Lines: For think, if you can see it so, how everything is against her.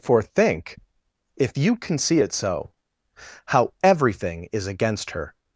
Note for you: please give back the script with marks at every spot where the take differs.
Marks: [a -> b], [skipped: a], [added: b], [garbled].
For think, if you can see it so, how everything is against her.